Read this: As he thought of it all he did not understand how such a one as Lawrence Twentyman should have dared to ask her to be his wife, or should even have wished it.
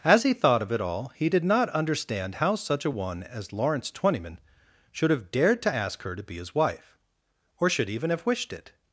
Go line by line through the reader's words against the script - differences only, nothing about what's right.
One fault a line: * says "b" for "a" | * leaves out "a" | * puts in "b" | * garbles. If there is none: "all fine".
all fine